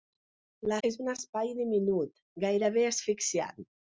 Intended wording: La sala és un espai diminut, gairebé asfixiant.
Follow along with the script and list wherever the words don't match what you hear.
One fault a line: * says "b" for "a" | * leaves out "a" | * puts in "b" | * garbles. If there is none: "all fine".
* leaves out "sala"